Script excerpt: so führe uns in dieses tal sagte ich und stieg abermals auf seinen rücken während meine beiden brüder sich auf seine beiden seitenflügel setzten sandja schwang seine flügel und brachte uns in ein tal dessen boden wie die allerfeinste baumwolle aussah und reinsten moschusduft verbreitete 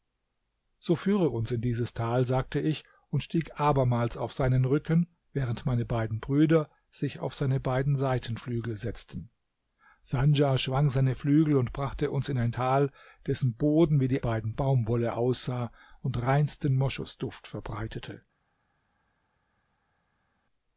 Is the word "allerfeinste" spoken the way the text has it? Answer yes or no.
no